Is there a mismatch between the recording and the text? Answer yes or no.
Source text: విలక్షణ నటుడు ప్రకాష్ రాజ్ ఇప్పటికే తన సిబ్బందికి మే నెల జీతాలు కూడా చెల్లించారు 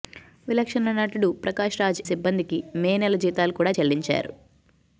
yes